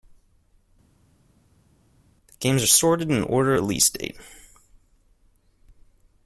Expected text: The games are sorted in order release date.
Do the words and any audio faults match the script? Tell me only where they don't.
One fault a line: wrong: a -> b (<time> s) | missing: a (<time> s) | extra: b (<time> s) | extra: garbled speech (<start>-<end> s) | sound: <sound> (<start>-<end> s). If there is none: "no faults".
no faults